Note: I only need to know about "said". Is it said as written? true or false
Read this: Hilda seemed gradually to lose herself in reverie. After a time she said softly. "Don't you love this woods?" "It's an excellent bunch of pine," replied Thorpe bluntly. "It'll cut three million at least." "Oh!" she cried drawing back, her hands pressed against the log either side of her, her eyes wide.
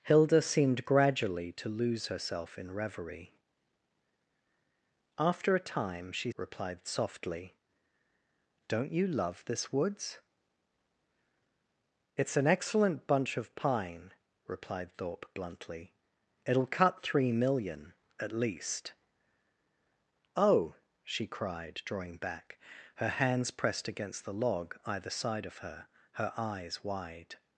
false